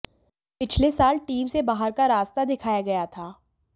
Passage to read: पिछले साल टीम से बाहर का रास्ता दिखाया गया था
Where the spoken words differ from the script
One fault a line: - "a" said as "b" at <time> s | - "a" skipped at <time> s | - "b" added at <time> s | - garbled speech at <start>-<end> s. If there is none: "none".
none